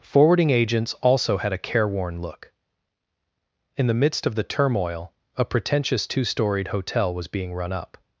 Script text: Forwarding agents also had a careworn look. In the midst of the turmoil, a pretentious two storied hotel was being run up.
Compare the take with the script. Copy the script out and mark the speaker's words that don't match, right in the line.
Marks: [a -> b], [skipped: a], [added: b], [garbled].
Forwarding agents also had a careworn look. In the midst of the turmoil, a pretentious two storied hotel was being run up.